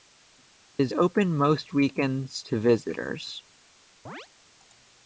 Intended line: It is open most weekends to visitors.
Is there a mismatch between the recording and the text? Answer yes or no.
no